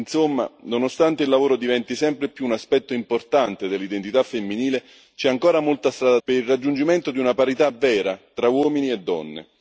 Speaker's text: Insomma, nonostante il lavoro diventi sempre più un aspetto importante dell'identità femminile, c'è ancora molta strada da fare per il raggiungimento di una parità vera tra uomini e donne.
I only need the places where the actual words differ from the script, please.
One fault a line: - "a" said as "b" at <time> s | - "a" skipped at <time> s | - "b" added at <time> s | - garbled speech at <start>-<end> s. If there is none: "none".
- "da fare" skipped at 6.2 s